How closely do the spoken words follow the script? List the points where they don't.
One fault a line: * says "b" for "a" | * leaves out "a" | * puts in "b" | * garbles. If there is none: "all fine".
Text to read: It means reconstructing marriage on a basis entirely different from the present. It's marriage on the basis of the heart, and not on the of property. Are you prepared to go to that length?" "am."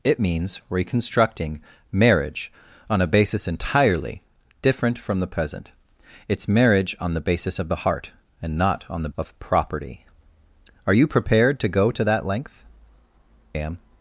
all fine